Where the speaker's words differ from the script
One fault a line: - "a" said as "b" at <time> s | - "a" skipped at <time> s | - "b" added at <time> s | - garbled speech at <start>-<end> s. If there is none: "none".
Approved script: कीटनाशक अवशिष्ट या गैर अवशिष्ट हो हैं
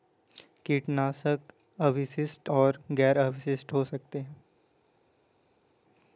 - "या" said as "और" at 2.5 s
- "सकते" added at 3.9 s